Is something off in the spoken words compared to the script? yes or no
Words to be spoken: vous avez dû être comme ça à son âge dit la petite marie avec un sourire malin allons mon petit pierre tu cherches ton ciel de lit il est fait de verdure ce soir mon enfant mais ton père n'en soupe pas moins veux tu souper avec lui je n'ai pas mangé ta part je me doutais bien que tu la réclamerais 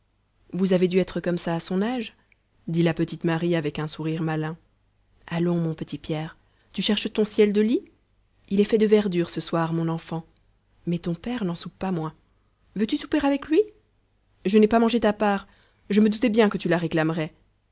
no